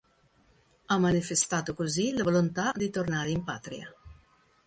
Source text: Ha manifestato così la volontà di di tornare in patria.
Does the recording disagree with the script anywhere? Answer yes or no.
yes